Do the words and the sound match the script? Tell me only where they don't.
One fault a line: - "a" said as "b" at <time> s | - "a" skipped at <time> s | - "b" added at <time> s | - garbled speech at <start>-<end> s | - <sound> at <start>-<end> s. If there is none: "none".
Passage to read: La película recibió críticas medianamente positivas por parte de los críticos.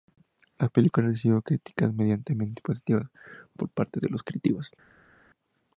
none